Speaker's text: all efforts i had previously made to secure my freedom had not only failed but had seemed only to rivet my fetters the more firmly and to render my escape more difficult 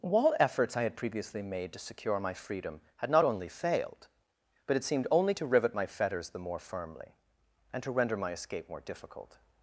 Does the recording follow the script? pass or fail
fail